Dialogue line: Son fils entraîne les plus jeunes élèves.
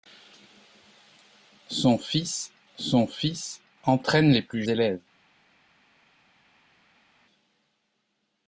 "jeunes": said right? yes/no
no